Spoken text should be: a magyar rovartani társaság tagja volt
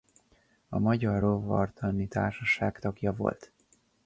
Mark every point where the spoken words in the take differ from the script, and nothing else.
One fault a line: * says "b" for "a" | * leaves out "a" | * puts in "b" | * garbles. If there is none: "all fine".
all fine